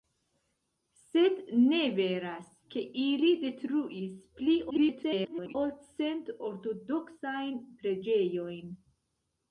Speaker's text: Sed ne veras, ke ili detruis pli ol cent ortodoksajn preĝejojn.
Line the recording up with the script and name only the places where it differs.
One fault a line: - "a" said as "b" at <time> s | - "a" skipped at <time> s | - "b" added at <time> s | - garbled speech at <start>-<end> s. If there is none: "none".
- garbled speech at 4.7-5.6 s